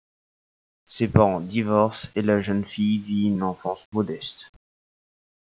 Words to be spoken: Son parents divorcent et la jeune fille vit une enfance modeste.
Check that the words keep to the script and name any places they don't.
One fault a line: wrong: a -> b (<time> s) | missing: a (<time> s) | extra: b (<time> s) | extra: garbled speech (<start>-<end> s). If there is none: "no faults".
wrong: Son -> Ses (0.9 s)